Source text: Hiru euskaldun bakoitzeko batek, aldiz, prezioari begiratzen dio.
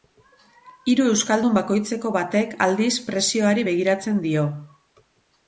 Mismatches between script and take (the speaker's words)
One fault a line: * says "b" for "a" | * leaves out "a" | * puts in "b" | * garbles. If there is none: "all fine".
all fine